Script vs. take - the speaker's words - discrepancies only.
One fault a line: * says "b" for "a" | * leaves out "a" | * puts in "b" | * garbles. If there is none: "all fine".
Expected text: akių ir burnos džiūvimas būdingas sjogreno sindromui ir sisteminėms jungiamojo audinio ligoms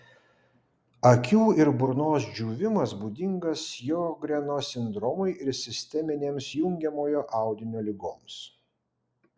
all fine